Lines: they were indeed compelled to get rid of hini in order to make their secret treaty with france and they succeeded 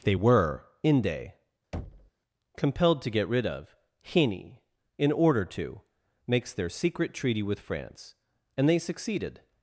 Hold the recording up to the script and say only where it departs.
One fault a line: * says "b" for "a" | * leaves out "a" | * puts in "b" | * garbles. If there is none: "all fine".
* says "inde" for "indeed"
* says "makes" for "make"